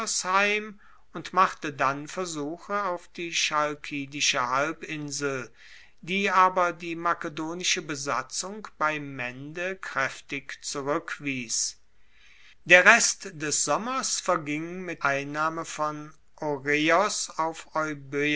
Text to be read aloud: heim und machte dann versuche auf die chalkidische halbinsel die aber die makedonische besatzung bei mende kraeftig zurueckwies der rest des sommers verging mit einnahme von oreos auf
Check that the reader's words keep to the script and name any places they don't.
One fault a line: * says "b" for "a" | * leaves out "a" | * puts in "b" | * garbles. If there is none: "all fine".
all fine